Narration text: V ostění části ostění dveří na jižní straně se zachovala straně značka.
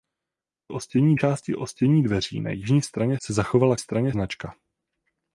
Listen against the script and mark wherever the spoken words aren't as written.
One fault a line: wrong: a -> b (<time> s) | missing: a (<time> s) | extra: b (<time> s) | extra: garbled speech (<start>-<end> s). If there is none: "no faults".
no faults